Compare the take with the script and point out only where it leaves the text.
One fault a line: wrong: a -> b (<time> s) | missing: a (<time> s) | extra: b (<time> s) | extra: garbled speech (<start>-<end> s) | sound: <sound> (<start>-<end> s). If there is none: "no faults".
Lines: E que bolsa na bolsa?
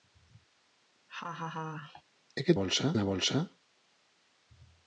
sound: laugh (1.1-2.0 s)